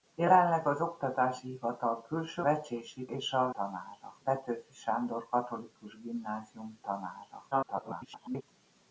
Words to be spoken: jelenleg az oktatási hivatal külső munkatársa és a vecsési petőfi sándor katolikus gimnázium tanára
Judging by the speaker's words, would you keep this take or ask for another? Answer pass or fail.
fail